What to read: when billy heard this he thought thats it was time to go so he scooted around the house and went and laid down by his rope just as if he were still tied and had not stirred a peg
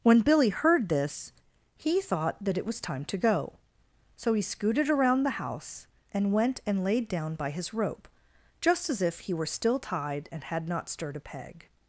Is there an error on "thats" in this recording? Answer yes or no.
yes